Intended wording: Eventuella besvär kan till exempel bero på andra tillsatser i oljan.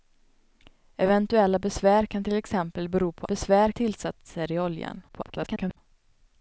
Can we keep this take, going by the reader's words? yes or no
no